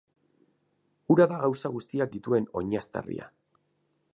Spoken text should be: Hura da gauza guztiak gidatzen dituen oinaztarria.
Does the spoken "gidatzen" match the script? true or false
false